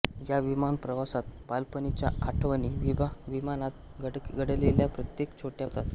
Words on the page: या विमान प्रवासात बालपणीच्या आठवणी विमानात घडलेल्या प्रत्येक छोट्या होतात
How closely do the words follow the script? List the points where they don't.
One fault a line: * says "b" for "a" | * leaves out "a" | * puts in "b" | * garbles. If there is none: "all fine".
all fine